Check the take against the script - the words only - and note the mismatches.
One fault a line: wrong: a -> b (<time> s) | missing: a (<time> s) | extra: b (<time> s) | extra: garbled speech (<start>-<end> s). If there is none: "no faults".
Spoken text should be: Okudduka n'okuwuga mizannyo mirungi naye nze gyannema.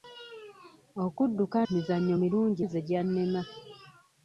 missing: n'okuwuga (1.6 s)
missing: naye (2.6 s)